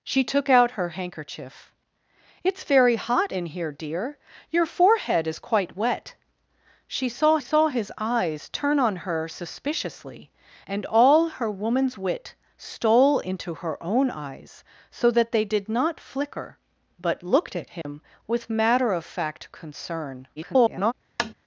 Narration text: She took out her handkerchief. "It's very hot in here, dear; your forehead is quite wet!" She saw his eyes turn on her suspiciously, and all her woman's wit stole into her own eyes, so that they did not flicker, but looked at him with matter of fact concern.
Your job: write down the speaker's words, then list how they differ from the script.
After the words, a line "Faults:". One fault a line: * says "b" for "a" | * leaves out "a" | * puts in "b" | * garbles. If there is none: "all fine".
She took out her handkerchief. "It's very hot in here, dear; your forehead is quite wet!" She saw saw his eyes turn on her suspiciously, and all her woman's wit stole into her own eyes, so that they did not flicker, but looked at him with matter of fact concern. [garbled]
Faults:
* puts in "saw"
* garbles